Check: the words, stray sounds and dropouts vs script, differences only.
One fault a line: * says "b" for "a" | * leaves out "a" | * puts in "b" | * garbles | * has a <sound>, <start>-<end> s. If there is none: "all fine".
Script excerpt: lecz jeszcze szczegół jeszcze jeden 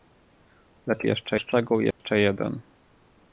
* has a dropout, 1.9-2.0 s